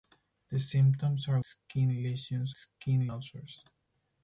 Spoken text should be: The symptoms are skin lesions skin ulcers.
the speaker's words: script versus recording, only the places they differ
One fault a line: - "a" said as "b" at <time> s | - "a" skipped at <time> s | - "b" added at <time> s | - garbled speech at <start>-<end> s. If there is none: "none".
none